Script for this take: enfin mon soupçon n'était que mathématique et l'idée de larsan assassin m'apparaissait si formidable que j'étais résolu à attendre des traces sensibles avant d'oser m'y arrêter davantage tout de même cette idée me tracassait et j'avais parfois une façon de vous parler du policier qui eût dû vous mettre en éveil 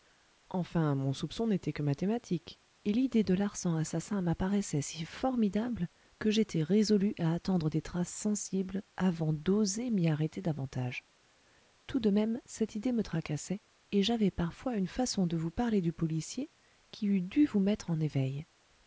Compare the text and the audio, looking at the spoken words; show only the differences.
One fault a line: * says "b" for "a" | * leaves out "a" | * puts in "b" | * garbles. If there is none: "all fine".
all fine